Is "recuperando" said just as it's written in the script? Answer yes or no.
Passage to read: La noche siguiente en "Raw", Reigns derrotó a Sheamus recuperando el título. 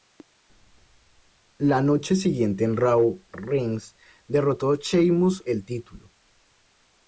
no